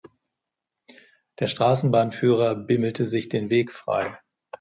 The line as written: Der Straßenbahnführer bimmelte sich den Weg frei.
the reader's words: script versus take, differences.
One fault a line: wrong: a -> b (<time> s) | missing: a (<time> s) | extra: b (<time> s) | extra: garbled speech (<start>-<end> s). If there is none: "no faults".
no faults